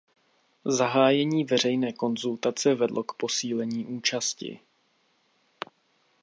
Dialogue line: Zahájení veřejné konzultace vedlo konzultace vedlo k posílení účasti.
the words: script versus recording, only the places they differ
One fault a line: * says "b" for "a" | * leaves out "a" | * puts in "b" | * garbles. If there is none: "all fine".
* leaves out "konzultace vedlo"